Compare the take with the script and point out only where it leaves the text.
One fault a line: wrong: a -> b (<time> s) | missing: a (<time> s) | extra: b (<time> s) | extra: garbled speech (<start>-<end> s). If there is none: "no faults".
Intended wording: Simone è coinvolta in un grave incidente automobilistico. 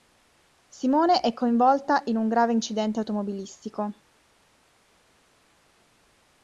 no faults